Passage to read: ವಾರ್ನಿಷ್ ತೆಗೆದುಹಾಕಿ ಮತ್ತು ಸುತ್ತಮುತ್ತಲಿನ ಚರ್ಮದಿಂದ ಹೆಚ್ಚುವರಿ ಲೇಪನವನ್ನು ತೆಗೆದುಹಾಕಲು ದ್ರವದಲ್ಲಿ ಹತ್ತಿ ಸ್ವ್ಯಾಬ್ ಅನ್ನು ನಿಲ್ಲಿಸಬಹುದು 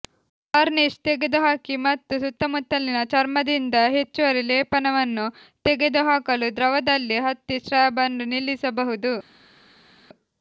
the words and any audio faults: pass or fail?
pass